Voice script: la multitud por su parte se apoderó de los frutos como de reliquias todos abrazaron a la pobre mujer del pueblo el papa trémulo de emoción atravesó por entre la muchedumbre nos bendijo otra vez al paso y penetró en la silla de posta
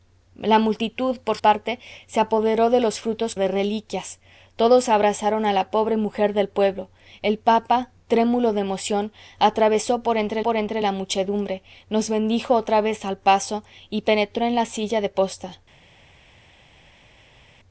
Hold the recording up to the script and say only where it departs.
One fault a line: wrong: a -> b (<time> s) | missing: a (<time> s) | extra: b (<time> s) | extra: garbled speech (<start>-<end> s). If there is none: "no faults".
missing: su (1.4 s)
missing: como (3.4 s)
extra: por entre (10.4 s)